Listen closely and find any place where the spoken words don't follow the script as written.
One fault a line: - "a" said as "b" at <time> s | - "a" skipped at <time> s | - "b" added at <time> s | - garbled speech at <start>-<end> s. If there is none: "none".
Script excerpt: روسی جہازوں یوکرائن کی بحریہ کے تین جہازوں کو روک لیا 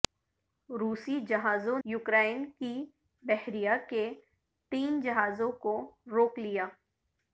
none